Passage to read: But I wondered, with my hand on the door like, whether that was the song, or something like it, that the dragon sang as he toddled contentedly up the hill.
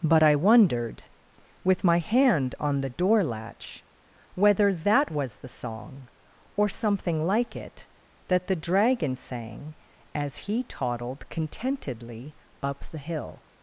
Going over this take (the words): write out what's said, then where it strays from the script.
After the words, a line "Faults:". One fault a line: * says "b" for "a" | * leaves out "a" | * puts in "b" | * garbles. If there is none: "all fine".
But I wondered, with my hand on the door latch, whether that was the song, or something like it, that the dragon sang as he toddled contentedly up the hill.
Faults:
* says "latch" for "like"